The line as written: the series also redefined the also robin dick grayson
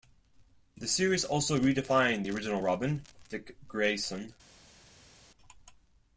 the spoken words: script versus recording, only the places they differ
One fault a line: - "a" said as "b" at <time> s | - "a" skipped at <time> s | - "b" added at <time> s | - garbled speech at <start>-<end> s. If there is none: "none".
- "also" said as "original" at 2.3 s